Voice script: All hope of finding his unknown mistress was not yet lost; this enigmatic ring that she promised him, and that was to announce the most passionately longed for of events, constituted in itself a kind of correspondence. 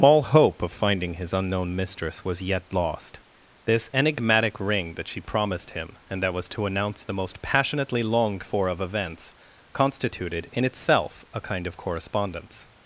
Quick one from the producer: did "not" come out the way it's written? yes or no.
no